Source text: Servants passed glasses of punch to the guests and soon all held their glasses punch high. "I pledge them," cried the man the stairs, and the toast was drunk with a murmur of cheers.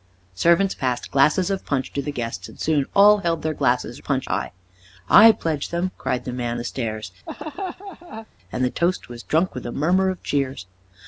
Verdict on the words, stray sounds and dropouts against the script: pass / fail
fail